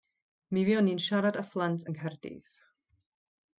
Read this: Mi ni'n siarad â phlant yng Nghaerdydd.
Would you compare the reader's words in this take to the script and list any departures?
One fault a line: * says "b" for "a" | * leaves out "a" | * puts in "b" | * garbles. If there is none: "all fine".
* puts in "fuon"